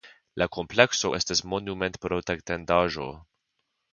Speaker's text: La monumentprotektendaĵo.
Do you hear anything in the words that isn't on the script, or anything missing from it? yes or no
yes